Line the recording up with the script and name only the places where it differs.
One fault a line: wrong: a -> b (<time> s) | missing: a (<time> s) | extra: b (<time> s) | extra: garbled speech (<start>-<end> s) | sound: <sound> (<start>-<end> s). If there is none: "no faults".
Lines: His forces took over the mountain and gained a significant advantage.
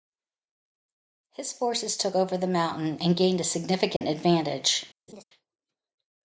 sound: dropout (4.0-4.0 s)
sound: laugh (5.1-5.2 s)